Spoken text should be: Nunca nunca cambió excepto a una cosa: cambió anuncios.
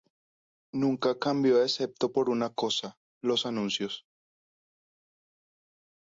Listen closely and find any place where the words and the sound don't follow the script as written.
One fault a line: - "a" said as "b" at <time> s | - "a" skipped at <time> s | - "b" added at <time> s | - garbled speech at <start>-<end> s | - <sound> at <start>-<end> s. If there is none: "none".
- "nunca" skipped at 1.2 s
- "a" said as "por" at 2.1 s
- "cambió" said as "los" at 3.2 s